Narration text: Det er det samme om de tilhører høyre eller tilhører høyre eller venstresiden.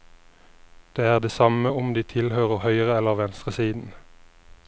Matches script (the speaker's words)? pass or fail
fail